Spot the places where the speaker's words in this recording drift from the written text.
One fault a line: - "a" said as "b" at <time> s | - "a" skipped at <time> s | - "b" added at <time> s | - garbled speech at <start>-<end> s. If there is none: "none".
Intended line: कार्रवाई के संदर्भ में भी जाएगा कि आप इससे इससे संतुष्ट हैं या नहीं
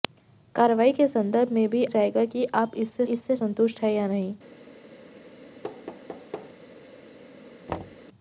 none